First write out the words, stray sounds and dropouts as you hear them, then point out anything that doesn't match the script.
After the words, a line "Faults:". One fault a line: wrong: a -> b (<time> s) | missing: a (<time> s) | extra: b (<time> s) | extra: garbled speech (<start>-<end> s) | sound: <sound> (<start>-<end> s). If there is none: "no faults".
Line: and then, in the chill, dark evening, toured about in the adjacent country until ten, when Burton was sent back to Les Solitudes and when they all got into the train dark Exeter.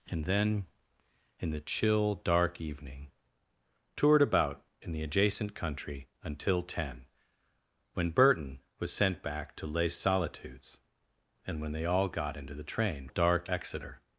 and then, in the chill, dark evening, toured about in the adjacent country until ten, when Burton was sent back to Les Solitudes and when they all got into the train dark Exeter.
Faults:
no faults